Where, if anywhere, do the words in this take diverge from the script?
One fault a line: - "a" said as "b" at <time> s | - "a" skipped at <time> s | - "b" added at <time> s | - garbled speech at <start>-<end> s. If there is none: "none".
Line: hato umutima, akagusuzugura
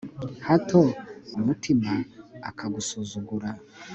none